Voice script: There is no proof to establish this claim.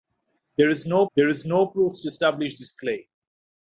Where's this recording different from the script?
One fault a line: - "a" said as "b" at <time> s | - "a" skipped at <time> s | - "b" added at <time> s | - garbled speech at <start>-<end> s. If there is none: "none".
- "there is no" added at 1.2 s